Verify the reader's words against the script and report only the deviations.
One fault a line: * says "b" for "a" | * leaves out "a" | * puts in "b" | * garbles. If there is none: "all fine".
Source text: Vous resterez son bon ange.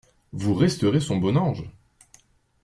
all fine